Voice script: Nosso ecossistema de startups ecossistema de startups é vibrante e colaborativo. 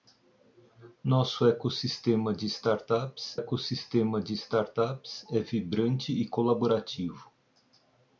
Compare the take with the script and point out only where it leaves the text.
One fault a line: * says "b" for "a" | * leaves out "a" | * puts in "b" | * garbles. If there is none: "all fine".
all fine